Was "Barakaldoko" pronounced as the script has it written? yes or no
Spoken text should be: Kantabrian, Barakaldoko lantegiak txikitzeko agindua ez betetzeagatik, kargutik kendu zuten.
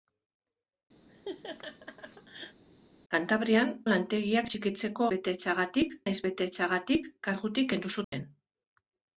no